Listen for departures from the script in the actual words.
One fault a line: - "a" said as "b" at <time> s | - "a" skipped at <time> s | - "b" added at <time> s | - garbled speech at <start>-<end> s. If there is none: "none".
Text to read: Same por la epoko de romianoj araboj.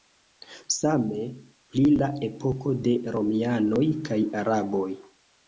- "por" said as "pri" at 1.7 s
- "kaj" added at 4.1 s